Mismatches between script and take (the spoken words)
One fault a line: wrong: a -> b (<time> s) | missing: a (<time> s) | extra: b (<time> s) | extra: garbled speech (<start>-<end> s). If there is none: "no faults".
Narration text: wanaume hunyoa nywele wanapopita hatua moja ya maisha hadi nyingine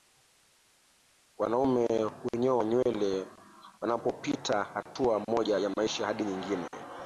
no faults